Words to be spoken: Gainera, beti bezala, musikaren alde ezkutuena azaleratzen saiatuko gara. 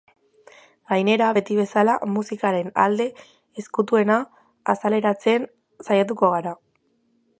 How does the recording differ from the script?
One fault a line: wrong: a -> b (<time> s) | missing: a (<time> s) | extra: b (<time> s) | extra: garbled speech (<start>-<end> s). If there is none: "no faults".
no faults